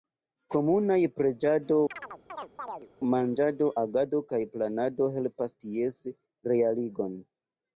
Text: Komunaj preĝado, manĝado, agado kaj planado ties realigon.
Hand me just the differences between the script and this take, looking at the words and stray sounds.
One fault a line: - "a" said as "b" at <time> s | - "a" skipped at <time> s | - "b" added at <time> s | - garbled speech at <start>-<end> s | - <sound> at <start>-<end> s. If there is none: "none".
- chirp at 1.9-2.9 s
- "helpas" added at 5.2 s